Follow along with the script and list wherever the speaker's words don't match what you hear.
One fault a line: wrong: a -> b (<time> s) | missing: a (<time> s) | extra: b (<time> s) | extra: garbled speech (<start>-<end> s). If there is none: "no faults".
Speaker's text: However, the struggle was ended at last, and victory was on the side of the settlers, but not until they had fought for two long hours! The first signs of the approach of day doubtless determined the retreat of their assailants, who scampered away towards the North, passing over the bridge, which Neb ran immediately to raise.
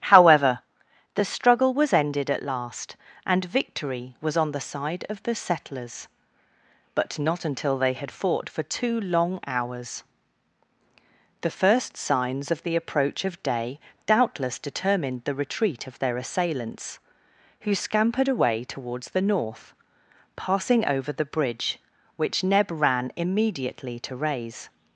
no faults